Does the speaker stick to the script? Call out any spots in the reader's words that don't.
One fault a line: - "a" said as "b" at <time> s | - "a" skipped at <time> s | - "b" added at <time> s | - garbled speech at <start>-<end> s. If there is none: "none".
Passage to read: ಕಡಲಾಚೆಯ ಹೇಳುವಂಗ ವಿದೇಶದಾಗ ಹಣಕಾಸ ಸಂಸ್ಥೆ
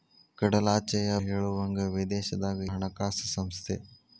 none